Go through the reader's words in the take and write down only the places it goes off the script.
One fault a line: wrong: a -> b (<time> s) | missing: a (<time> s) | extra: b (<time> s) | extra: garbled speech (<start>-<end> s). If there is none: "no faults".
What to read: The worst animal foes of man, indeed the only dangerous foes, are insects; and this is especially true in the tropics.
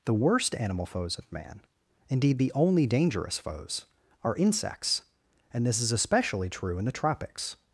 no faults